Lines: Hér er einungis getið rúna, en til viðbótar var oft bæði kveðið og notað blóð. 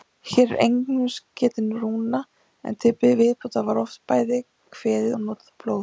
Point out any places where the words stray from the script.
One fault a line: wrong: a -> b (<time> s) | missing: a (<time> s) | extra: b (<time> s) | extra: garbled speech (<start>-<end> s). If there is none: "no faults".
no faults